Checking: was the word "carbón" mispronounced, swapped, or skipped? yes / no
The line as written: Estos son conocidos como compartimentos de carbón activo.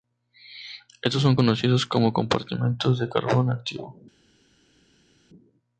no